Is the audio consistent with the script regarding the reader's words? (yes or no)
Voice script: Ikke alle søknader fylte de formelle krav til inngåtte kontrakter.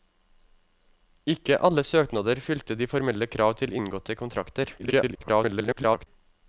no